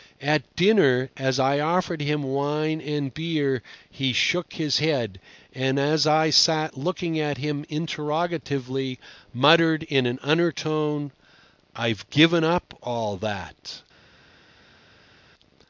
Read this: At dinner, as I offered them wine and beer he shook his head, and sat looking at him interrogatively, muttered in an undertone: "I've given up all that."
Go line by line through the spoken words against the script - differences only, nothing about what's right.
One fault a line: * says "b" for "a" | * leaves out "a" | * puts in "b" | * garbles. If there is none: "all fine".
* says "him" for "them"
* puts in "as I"